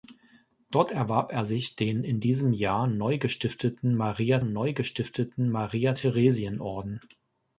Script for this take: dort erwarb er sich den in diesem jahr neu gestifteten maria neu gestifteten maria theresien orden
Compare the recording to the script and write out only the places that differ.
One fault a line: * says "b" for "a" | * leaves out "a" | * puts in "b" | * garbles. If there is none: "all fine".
all fine